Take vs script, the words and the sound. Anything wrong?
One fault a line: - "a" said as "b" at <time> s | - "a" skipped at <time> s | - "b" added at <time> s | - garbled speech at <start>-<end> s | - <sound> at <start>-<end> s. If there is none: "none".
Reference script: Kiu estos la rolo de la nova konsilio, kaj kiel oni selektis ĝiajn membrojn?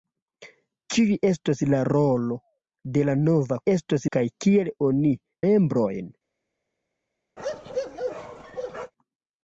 - "konsilio" said as "estos" at 3.7 s
- "selektis ĝiajn" skipped at 5.1 s
- bark at 7.4-8.9 s